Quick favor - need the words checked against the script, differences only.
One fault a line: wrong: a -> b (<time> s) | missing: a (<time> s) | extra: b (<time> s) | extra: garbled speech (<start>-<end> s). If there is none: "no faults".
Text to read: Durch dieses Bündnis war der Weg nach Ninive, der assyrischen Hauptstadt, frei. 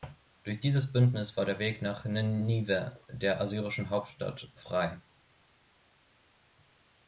no faults